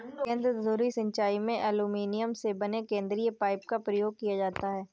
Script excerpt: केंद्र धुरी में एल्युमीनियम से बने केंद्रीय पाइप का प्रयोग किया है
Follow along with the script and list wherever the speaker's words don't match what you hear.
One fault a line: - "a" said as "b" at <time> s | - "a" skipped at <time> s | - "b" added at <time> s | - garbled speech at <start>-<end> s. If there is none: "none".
- "सिंचाई" added at 0.9 s
- "जाता" added at 4.4 s